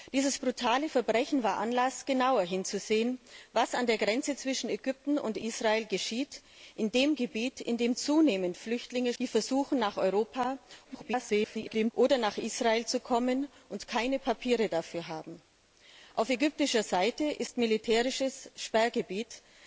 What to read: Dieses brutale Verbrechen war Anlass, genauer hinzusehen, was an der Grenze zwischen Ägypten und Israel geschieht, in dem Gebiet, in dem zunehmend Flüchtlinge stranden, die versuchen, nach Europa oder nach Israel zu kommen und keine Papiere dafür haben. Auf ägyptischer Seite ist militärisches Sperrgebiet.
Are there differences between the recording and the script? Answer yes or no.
yes